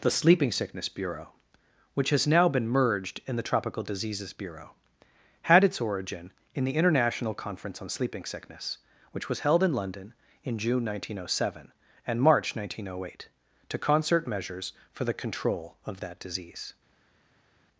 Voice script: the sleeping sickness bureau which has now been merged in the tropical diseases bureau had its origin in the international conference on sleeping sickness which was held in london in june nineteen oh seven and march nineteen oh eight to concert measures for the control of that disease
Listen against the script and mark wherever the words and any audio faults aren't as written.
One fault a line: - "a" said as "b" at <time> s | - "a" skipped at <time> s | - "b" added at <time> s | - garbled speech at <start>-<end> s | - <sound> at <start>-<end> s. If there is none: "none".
none